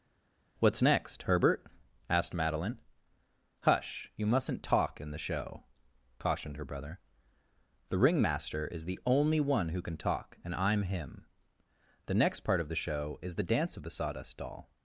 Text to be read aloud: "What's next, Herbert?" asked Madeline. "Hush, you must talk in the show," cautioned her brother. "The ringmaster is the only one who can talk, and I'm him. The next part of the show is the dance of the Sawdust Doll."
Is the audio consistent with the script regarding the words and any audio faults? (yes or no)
no